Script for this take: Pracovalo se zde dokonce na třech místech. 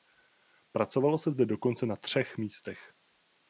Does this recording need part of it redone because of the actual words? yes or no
no